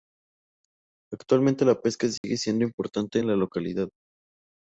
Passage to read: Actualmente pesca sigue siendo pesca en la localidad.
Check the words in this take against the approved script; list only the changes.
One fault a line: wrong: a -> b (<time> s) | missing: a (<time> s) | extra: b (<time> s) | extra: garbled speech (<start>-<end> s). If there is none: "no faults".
extra: la (1.6 s)
wrong: pesca -> importante (2.6 s)